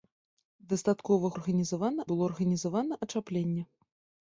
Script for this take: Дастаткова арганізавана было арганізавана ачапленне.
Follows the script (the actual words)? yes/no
yes